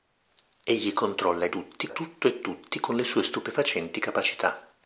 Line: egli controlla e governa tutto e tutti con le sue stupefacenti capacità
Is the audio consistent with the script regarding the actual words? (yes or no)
no